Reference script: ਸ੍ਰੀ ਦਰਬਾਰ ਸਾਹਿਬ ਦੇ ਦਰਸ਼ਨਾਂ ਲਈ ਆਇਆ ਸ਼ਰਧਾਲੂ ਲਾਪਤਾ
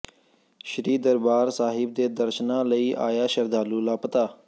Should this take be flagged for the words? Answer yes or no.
no